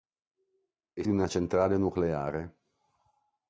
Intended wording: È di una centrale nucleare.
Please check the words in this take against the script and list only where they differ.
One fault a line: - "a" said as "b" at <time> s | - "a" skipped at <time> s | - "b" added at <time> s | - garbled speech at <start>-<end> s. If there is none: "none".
none